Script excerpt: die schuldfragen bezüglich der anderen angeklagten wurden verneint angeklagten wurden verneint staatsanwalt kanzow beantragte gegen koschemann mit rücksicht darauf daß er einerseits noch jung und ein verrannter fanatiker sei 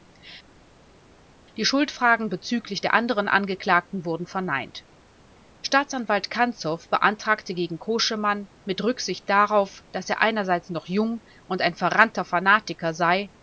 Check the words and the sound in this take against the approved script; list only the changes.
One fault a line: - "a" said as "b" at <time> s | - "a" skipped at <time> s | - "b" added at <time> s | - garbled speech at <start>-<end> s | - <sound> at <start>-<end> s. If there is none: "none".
- "angeklagten wurden verneint" skipped at 4.8 s